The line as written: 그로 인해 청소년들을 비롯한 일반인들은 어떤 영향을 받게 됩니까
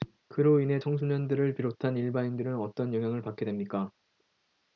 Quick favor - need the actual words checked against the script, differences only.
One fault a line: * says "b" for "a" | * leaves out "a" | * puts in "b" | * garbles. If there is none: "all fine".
all fine